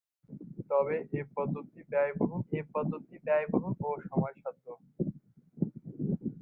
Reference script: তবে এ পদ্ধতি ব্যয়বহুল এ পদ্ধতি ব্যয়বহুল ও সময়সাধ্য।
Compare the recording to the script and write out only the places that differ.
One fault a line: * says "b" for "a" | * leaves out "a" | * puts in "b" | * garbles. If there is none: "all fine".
all fine